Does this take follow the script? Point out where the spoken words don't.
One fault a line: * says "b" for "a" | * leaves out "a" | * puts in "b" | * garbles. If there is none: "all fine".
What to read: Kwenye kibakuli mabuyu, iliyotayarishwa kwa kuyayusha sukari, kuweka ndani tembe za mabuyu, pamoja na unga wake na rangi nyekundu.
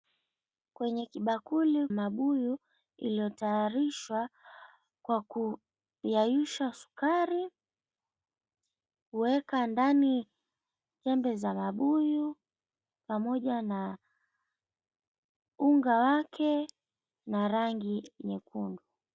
all fine